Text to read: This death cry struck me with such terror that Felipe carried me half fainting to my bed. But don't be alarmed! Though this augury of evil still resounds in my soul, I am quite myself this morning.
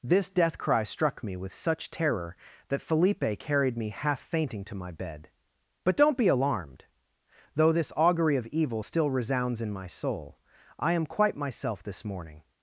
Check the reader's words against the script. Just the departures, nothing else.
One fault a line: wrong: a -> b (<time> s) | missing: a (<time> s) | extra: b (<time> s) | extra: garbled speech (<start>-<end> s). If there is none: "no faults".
no faults